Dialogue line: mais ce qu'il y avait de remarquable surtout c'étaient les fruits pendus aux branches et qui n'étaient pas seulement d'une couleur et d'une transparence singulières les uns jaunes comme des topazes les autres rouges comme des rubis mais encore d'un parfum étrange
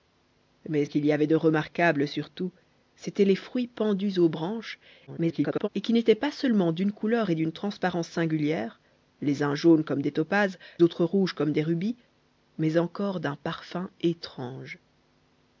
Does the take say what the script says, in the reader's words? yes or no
no